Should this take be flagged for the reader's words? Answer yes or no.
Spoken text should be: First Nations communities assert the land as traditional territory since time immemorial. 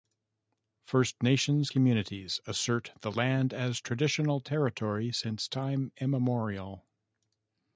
no